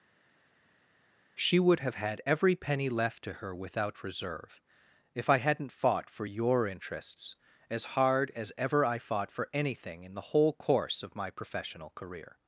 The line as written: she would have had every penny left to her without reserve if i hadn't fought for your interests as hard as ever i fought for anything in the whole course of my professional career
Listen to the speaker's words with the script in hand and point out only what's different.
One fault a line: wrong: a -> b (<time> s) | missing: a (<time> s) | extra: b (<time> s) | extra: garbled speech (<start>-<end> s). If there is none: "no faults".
no faults